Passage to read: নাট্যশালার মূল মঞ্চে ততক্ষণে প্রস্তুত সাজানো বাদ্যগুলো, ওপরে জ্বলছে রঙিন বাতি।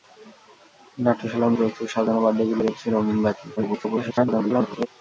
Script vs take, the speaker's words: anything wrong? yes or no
yes